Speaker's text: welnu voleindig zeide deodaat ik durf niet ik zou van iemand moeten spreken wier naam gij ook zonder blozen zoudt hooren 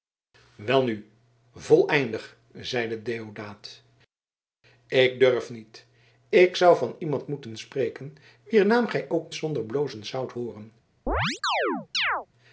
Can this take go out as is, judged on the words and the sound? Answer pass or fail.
fail